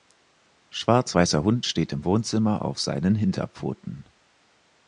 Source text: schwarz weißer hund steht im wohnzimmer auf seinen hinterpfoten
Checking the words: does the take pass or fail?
pass